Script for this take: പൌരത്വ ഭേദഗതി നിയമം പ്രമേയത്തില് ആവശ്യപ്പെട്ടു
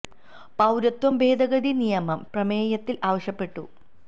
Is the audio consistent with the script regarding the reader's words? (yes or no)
yes